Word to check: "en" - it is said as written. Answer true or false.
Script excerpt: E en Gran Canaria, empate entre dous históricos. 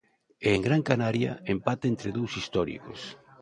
true